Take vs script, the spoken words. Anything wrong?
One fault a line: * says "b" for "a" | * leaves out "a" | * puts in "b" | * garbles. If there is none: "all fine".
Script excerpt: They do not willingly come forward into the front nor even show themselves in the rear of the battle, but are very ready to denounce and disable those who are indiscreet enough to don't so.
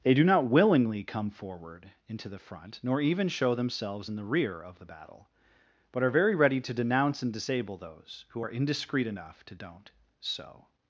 all fine